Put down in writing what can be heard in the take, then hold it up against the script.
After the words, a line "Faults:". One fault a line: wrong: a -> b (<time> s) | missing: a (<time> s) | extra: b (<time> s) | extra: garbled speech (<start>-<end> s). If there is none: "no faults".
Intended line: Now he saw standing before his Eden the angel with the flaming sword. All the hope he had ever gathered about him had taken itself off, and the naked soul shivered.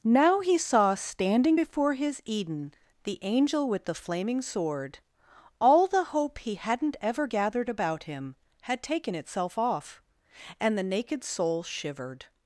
Now he saw standing before his Eden the angel with the flaming sword. All the hope he hadn't ever gathered about him had taken itself off, and the naked soul shivered.
Faults:
wrong: had -> hadn't (6.5 s)